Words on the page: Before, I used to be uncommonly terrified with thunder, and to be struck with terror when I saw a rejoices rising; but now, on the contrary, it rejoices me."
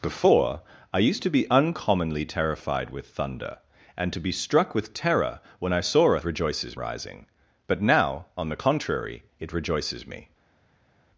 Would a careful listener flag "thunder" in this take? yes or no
no